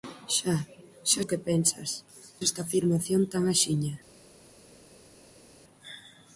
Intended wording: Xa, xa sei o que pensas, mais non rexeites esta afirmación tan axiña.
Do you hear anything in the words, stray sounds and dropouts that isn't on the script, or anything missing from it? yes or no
yes